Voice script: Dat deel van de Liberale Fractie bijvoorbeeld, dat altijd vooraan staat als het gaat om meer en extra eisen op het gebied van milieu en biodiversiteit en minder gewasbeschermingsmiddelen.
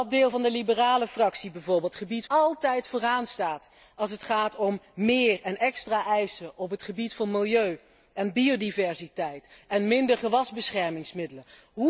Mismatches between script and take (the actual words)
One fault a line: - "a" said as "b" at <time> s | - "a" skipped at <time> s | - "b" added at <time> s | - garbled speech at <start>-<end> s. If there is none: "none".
- "dat" said as "gebied" at 1.9 s